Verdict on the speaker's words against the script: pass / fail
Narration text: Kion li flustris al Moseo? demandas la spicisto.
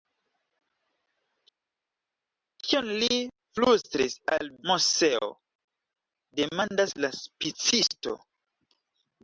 pass